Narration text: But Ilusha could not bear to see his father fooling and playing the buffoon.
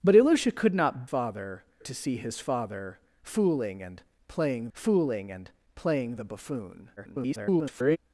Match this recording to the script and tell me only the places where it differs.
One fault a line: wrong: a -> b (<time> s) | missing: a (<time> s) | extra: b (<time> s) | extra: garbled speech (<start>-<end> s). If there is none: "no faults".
wrong: bear -> father (1.0 s)
extra: fooling and playing (4.7 s)
extra: garbled speech (7.0-8.0 s)